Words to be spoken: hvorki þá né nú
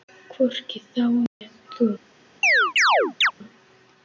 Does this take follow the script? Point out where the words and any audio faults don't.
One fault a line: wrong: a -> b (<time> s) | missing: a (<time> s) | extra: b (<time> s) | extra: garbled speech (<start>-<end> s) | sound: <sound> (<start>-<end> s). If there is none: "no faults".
sound: dropout (1.3-1.4 s)
sound: chirp (2.4-3.3 s)